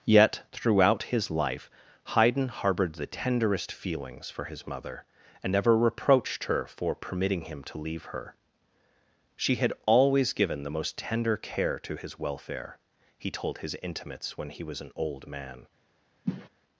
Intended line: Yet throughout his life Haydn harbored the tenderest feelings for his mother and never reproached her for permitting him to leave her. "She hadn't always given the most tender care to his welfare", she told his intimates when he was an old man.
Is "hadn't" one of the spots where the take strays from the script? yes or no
yes